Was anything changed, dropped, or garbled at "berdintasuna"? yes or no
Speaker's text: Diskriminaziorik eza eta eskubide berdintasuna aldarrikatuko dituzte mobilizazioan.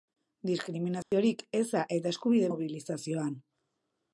yes